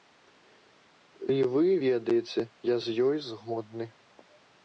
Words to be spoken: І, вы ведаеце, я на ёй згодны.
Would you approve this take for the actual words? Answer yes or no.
no